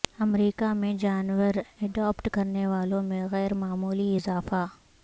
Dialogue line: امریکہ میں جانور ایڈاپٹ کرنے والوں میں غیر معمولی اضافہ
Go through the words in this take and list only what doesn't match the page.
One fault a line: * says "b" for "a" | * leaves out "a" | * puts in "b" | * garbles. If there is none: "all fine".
all fine